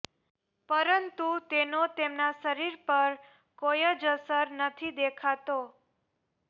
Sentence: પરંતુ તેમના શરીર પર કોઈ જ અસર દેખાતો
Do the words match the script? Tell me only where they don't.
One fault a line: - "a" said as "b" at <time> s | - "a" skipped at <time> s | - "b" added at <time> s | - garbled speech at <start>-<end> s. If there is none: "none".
- "તેનો" added at 1.5 s
- "નથી" added at 4.6 s